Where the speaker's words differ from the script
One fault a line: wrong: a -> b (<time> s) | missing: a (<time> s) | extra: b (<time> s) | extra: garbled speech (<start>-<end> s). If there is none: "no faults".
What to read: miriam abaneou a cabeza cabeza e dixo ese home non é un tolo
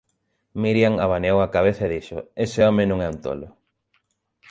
missing: cabeza (1.8 s)